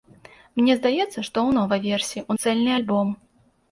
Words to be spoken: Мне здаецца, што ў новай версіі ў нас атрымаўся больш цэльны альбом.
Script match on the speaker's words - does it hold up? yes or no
no